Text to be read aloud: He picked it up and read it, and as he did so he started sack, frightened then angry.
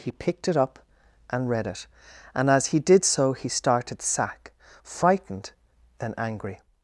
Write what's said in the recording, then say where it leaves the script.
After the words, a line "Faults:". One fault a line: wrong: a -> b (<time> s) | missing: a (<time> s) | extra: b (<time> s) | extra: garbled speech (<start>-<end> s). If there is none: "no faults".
He picked it up and read it, and as he did so he started sack, frightened then angry.
Faults:
no faults